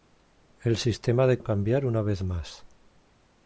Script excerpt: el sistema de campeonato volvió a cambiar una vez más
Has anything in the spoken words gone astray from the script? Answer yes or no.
yes